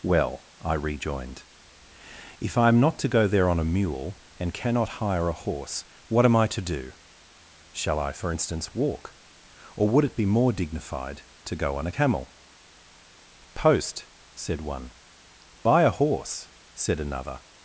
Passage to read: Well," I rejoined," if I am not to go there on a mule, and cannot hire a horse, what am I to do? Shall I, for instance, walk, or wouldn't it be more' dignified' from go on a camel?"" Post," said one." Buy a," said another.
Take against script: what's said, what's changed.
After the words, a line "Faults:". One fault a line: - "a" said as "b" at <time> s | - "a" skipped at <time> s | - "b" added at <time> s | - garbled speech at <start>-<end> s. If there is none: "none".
Well," I rejoined," if I am not to go there on a mule, and cannot hire a horse, what am I to do? Shall I, for instance, walk, or would it be more' dignified' to go on a camel?"" Post," said one." Buy a horse," said another.
Faults:
- "wouldn't" said as "would" at 9.9 s
- "from" said as "to" at 11.4 s
- "horse" added at 15.9 s